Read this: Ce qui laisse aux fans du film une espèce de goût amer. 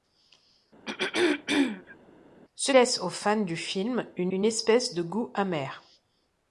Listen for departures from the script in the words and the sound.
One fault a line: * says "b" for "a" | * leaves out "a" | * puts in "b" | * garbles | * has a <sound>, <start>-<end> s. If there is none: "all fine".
* has a throat clearing, 0.9-2.0 s
* leaves out "qui"
* puts in "une"